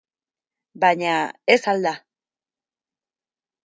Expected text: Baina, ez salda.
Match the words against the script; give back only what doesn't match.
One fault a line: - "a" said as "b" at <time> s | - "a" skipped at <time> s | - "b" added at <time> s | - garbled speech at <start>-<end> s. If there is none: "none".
none